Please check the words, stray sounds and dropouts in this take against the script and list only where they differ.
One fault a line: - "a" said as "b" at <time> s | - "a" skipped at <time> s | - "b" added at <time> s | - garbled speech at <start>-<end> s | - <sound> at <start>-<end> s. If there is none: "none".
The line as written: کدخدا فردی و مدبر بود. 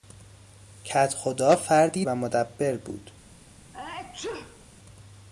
- sneeze at 3.7-4.7 s